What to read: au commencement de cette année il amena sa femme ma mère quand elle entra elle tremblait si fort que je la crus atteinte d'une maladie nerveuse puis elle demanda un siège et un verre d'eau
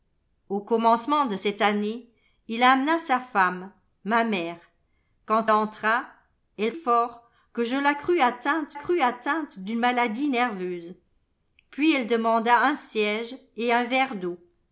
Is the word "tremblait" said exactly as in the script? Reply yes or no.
no